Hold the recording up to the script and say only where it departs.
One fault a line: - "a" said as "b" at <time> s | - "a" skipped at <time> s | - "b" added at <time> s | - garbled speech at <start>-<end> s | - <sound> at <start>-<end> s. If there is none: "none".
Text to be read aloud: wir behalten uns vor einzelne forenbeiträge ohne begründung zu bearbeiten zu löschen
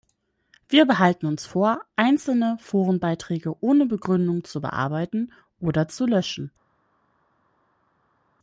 - "oder" added at 5.6 s